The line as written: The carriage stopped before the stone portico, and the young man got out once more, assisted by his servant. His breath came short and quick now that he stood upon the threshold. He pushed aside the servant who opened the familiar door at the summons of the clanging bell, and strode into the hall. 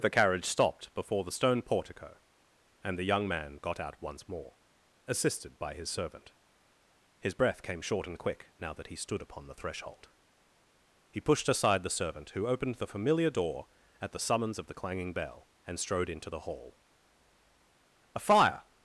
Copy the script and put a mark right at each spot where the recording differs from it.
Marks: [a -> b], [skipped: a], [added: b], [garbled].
The carriage stopped before the stone portico, and the young man got out once more, assisted by his servant. His breath came short and quick now that he stood upon the threshold. He pushed aside the servant who opened the familiar door at the summons of the clanging bell, and strode into the hall. [added: A fire]